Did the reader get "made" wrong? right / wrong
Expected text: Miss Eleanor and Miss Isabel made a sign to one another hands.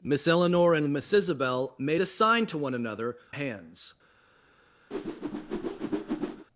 right